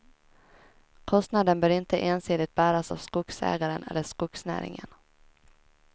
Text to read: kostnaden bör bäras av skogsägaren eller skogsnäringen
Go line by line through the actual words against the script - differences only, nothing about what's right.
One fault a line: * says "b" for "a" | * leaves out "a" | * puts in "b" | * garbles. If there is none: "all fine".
* puts in "inte ensidigt"